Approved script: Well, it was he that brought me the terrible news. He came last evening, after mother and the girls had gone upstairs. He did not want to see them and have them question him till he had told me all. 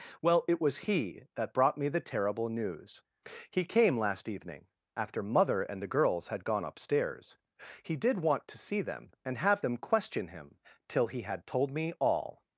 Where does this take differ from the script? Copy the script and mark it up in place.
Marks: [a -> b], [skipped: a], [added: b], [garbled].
Well, it was he that brought me the terrible news. He came last evening, after mother and the girls had gone upstairs. He did [skipped: not] want to see them and have them question him till he had told me all.